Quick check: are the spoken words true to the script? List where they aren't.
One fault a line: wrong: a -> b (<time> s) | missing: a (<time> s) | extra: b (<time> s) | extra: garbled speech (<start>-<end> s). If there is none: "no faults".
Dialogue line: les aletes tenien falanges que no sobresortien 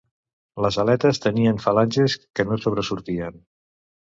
no faults